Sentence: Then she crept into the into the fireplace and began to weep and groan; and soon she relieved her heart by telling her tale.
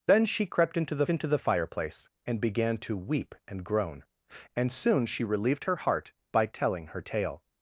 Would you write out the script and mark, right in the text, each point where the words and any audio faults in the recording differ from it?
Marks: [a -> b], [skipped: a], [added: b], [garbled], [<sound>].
Then she crept into the into the fireplace and began to weep and groan; and soon she relieved her heart by telling her tale.